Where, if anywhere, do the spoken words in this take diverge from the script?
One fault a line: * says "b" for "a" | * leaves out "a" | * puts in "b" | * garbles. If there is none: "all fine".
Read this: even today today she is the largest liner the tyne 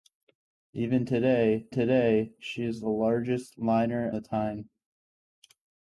all fine